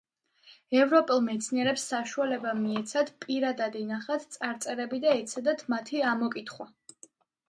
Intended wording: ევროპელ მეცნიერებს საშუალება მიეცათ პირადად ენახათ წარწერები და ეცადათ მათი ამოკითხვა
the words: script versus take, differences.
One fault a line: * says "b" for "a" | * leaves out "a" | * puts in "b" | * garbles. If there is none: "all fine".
all fine